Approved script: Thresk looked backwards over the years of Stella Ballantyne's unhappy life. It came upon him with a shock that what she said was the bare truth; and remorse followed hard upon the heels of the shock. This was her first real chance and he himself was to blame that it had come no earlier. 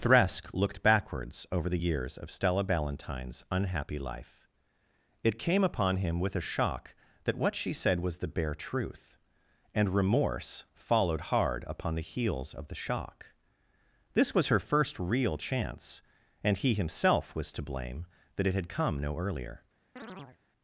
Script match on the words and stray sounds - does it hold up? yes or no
no